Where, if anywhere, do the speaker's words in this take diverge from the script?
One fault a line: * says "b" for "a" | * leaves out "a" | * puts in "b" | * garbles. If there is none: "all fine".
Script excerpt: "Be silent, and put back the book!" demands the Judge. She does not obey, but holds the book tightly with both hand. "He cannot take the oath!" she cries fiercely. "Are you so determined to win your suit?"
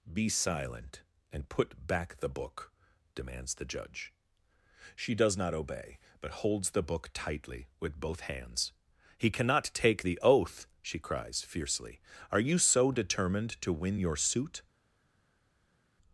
* says "hands" for "hand"